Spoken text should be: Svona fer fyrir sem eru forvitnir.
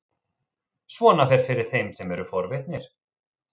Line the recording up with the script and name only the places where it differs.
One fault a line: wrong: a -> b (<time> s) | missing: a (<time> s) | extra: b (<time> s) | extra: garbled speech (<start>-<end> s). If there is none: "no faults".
extra: þeim (1.7 s)